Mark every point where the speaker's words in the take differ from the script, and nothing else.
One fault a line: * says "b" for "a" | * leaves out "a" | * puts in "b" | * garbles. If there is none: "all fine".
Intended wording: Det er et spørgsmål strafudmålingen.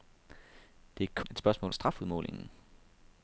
all fine